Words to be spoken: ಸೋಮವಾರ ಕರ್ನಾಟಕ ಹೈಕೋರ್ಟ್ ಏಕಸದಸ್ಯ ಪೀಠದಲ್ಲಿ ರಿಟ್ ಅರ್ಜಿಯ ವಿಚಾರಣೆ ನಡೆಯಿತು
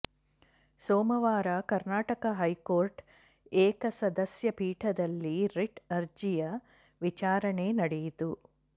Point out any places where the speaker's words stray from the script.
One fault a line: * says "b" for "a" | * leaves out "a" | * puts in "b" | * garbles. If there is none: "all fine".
all fine